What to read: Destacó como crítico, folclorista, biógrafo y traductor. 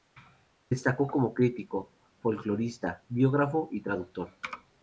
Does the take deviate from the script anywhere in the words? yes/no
no